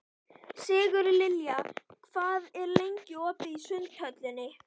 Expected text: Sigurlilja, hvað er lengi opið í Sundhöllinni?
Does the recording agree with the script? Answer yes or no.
yes